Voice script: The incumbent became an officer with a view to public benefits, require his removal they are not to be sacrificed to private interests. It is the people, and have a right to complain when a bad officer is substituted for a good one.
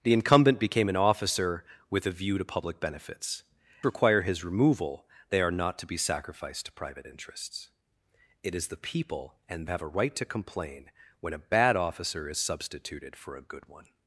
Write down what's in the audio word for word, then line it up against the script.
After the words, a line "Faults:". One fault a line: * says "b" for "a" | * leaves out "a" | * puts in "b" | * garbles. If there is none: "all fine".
The incumbent became an officer with a view to public benefits, require his removal they are not to be sacrificed to private interests. It is the people, and have a right to complain when a bad officer is substituted for a good one.
Faults:
all fine